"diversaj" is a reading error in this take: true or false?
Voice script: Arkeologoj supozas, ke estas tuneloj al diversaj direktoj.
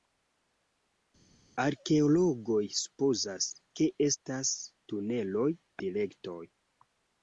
true